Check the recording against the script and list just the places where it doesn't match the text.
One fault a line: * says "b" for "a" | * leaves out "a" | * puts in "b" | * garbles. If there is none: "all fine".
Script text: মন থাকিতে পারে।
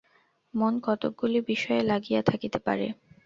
* puts in "কতকগুলি বিষয়ে লাগিয়া"